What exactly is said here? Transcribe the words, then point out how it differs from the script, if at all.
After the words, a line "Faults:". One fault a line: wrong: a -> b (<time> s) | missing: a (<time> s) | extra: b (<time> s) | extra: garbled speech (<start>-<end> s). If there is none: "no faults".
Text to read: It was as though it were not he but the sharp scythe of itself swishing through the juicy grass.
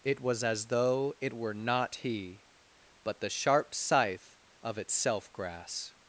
It was as though it were not he but the sharp scythe of itself grass.
Faults:
missing: swishing through the juicy (5.3 s)